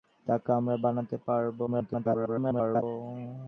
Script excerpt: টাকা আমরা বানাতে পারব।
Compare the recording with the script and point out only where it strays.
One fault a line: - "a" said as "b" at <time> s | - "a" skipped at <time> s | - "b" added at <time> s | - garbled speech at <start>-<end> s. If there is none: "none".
- garbled speech at 1.7-2.8 s